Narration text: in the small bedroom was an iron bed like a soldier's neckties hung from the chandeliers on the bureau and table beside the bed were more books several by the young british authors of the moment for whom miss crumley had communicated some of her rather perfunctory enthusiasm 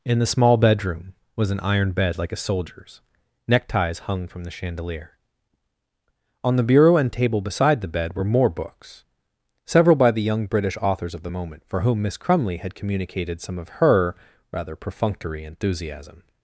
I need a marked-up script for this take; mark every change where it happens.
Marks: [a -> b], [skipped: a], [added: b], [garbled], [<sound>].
in the small bedroom was an iron bed like a soldier's neckties hung from the [chandeliers -> chandelier] on the bureau and table beside the bed were more books several by the young british authors of the moment for whom miss crumley had communicated some of her rather perfunctory enthusiasm